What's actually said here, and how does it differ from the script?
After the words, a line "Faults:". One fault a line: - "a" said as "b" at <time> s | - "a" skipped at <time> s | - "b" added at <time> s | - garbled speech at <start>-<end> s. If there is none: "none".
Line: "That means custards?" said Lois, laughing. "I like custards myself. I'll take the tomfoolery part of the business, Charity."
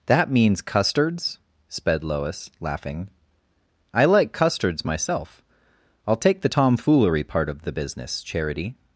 "That means custards?" sped Lois, laughing. "I like custards myself. I'll take the tomfoolery part of the business, Charity."
Faults:
- "said" said as "sped" at 1.7 s